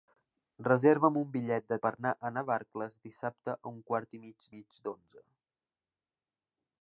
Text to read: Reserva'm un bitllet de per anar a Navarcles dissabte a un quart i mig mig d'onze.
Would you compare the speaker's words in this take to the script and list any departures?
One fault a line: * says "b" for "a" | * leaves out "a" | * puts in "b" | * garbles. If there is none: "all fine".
all fine